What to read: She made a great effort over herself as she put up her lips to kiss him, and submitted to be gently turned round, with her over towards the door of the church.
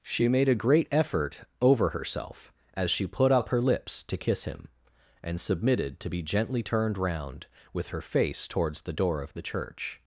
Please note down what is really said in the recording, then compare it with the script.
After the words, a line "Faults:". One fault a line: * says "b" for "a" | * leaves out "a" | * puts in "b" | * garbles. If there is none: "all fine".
She made a great effort over herself as she put up her lips to kiss him, and submitted to be gently turned round, with her face towards the door of the church.
Faults:
* says "face" for "over"